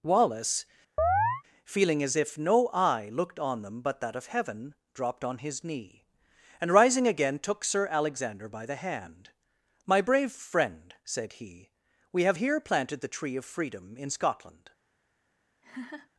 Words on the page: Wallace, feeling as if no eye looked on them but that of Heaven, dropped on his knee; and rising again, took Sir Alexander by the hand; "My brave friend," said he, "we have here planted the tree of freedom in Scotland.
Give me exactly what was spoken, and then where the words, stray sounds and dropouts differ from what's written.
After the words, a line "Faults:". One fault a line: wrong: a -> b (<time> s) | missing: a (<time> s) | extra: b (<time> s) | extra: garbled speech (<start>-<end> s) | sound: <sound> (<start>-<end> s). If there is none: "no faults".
Wallace, feeling as if no eye looked on them but that of Heaven, dropped on his knee; and rising again, took Sir Alexander by the hand; "My brave friend," said he, "we have here planted the tree of freedom in Scotland.
Faults:
sound: chirp (1.0-1.4 s)
sound: laugh (15.6-16.1 s)